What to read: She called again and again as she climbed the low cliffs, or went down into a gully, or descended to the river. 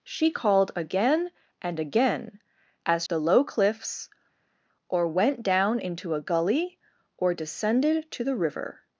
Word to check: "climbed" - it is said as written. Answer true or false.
false